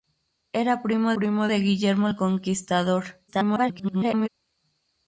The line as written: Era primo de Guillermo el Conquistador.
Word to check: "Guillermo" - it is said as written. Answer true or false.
true